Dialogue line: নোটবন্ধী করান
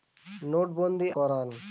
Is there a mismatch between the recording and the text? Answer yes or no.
no